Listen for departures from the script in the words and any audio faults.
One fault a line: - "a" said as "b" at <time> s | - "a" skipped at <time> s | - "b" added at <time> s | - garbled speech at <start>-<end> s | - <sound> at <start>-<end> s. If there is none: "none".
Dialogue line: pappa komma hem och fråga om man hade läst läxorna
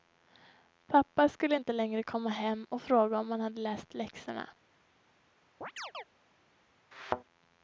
- "skulle inte längre" added at 1.3 s
- chirp at 5.6-6.0 s
- thud at 6.9-7.2 s